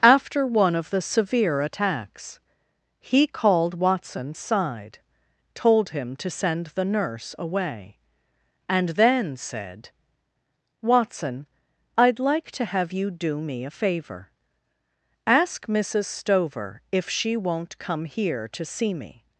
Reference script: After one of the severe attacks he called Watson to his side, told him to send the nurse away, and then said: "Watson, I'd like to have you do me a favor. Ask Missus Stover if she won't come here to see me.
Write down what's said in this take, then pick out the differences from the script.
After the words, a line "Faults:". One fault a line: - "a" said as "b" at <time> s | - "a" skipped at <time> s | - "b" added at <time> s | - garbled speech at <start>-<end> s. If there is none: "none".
After one of the severe attacks he called Watson side, told him to send the nurse away, and then said: "Watson, I'd like to have you do me a favor. Ask Missus Stover if she won't come here to see me.
Faults:
- "to his" skipped at 4.3 s